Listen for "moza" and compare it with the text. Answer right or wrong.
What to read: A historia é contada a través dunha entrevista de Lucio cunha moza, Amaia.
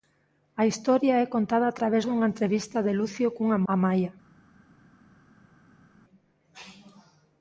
wrong